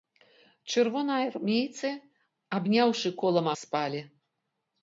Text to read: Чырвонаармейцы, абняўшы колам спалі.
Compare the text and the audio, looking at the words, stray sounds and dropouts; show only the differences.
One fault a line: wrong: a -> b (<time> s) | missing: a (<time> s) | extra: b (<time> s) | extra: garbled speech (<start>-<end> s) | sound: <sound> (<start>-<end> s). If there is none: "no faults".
no faults